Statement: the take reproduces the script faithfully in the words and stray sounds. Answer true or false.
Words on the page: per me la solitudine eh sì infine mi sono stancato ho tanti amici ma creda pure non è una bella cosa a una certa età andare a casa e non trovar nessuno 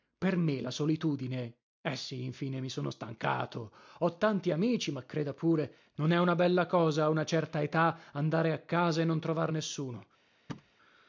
false